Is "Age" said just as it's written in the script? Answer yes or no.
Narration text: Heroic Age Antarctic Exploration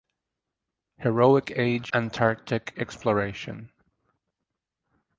yes